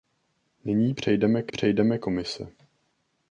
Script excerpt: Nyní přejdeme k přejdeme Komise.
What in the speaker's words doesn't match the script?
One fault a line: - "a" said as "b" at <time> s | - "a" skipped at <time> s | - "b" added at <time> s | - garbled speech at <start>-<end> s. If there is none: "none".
none